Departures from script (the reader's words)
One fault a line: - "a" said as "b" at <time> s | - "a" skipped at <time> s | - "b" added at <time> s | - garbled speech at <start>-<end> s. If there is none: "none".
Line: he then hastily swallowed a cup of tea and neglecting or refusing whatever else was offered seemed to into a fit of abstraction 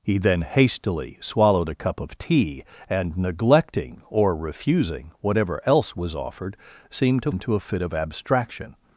none